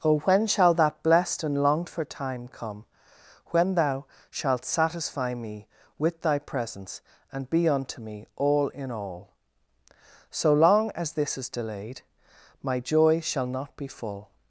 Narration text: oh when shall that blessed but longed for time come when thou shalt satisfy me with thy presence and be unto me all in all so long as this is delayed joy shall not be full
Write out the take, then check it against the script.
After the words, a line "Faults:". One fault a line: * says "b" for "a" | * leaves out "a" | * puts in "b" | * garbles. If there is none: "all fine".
oh when shall that blessed and longed for time come when thou shalt satisfy me with thy presence and be unto me all in all so long as this is delayed my joy shall not be full
Faults:
* says "and" for "but"
* puts in "my"